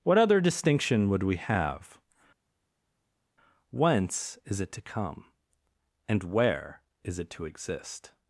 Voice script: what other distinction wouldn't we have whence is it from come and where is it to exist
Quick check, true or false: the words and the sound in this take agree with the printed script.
false